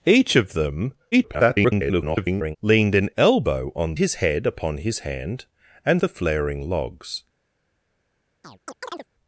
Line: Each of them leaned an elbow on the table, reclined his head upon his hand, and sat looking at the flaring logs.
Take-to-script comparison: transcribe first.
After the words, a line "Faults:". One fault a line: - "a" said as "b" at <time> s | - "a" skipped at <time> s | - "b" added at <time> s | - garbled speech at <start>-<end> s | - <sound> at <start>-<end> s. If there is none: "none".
Each of them [garbled] leaned an elbow on his head upon his hand, and the flaring logs.
Faults:
- garbled speech at 1.1-2.6 s
- "the table reclined" skipped at 3.9 s
- "sat looking at" skipped at 6.0 s
- chirp at 8.4-9.1 s